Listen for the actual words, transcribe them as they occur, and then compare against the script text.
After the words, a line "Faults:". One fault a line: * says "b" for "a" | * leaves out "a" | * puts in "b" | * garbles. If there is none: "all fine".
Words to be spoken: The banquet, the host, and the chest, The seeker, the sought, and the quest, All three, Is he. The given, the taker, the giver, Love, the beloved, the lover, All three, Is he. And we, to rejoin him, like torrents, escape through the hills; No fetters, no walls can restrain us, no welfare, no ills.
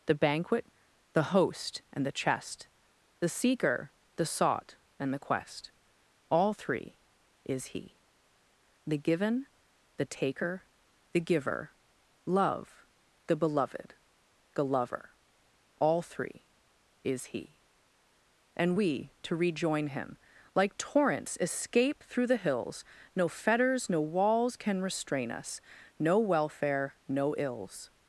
The banquet, the host, and the chest, The seeker, the sought, and the quest, All three, Is he. The given, the taker, the giver, Love, the beloved, the lover, All three, Is he. And we, to rejoin him, like torrents, escape through the hills; No fetters, no walls can restrain us, no welfare, no ills.
Faults:
all fine